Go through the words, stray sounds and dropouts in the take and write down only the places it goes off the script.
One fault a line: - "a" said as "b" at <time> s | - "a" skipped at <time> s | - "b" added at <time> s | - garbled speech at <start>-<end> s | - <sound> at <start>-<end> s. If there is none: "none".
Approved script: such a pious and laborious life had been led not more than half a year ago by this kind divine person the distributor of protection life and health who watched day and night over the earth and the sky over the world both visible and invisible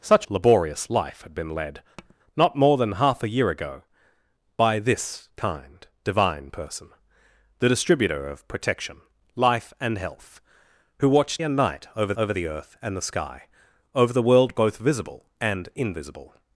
- "a pious and" skipped at 0.2 s
- tap at 2.0-2.2 s
- "day" skipped at 11.4 s
- "over" added at 12.2 s